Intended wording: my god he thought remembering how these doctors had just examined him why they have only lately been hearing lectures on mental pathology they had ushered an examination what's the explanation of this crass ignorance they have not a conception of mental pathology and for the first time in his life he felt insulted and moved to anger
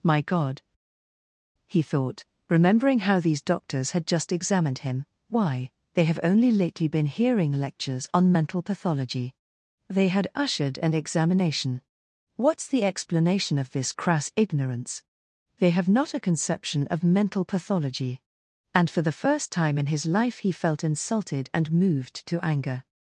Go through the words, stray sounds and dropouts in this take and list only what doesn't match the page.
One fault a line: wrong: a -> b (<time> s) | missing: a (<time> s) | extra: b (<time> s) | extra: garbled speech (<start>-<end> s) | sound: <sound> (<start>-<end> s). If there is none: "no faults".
no faults